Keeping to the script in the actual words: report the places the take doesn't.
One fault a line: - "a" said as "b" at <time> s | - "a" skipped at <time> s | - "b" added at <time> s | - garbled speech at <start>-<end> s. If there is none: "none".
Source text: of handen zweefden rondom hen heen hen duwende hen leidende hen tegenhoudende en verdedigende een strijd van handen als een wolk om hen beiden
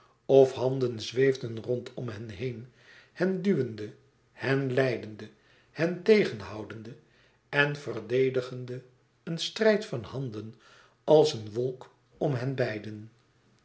none